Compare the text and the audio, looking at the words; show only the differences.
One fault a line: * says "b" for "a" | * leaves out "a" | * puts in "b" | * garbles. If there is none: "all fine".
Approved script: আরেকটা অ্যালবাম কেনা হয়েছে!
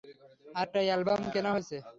all fine